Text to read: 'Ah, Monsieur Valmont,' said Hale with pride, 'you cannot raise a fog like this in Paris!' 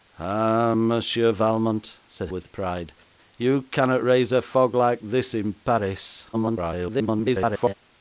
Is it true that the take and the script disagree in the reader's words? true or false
true